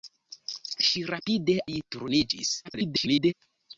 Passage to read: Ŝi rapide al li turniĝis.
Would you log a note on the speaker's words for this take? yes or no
yes